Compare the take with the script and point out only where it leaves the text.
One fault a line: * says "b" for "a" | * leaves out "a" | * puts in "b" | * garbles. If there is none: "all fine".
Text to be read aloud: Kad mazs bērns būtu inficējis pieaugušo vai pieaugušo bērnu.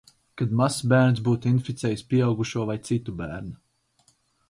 * says "citu" for "pieaugušo"